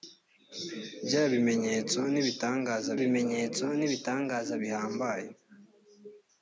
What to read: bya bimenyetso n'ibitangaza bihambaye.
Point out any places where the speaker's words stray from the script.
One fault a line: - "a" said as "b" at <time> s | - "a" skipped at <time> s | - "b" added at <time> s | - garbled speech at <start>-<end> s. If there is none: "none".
- "bimenyetso n'ibitangaza" added at 3.0 s